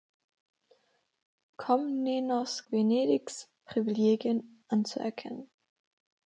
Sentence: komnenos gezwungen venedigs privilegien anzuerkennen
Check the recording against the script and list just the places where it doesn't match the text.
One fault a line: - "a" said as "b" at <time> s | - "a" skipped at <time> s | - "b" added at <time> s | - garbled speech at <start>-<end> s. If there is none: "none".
- "gezwungen" skipped at 2.6 s